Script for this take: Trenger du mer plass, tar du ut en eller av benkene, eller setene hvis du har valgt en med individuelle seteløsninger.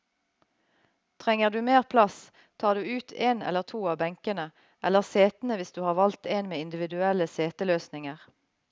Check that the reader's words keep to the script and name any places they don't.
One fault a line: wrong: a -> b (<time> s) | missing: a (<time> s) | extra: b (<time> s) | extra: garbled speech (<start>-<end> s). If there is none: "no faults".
extra: to (3.6 s)